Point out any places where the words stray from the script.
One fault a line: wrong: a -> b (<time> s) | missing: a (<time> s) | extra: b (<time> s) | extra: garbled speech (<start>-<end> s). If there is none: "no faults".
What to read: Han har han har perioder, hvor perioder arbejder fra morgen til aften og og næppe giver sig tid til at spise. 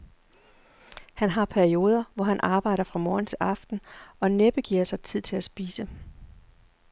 missing: han har (1.4 s)
wrong: perioder -> han (2.2 s)
missing: og (4.3 s)